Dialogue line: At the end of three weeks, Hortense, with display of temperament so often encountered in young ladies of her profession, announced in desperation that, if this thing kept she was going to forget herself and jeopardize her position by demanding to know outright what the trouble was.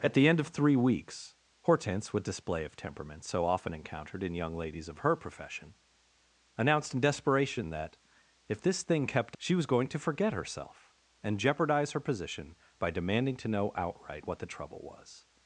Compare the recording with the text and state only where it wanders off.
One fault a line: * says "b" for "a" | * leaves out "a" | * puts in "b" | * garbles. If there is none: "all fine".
all fine